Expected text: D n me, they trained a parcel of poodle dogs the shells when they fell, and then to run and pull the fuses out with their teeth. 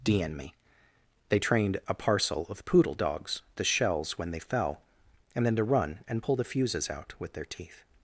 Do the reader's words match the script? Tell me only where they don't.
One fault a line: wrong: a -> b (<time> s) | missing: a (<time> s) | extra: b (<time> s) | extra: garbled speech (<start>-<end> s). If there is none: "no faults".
no faults